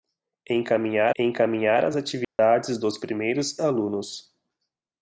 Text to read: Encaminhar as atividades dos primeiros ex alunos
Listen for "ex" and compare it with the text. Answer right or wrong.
wrong